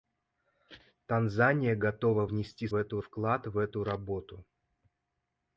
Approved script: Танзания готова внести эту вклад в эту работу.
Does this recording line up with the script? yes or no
yes